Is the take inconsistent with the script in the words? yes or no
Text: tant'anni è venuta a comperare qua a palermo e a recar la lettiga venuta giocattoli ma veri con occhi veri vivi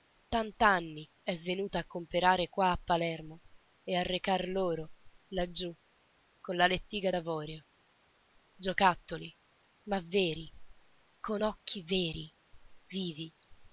yes